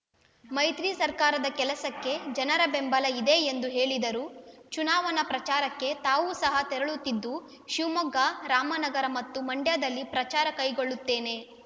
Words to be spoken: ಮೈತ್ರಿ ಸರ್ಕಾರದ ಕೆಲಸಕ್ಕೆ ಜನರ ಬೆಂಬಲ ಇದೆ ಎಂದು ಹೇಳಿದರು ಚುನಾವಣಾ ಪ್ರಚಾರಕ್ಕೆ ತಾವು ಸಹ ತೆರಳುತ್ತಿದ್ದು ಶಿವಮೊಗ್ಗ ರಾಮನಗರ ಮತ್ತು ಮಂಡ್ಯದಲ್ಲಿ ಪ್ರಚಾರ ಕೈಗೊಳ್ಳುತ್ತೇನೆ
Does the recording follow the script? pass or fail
pass